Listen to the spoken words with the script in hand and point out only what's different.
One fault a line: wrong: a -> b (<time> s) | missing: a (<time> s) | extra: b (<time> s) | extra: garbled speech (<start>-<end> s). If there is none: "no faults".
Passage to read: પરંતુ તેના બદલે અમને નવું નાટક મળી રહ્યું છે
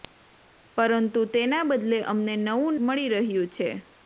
missing: નાટક (2.8 s)